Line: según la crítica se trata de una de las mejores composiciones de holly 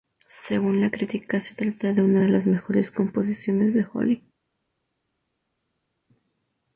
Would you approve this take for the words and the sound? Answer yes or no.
yes